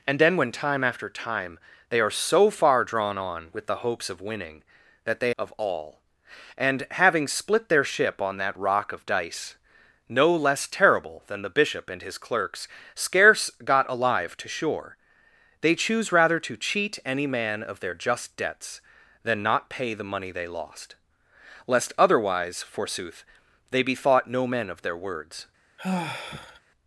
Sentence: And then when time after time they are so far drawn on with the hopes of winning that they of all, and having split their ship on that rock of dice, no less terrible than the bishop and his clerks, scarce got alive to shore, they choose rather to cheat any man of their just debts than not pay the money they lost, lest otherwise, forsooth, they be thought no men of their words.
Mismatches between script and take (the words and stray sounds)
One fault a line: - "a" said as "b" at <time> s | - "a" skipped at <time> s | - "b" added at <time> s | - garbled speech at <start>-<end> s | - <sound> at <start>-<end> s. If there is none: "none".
- sigh at 25.8-26.6 s